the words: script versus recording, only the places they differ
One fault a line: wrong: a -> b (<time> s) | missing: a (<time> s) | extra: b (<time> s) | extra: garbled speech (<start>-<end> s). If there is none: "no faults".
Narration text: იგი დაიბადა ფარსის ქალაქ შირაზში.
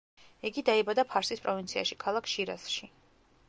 extra: პროვინციაში (1.4 s)